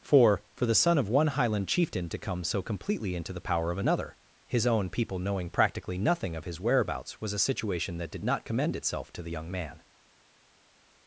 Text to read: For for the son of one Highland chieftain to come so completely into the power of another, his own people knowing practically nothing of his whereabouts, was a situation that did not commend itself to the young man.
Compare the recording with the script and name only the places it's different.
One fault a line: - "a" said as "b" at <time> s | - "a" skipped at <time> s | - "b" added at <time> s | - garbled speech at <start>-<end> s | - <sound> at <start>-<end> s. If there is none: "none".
none